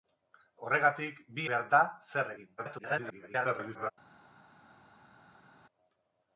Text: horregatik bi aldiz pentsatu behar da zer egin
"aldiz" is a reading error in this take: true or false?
true